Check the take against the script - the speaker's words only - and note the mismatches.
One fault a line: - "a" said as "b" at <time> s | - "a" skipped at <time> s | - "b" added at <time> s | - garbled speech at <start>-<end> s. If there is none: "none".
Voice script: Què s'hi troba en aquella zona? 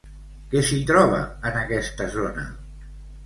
- "aquella" said as "aquesta" at 1.6 s